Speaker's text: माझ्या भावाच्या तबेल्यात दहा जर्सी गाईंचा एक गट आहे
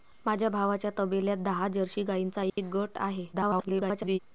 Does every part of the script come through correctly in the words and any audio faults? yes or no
no